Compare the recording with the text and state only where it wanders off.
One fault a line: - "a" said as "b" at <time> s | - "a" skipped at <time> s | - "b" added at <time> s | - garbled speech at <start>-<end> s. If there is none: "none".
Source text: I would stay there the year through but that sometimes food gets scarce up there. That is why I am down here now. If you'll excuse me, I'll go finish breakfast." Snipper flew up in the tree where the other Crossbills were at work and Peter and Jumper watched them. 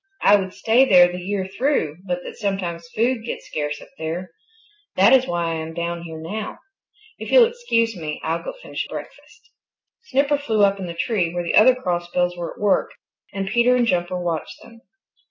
none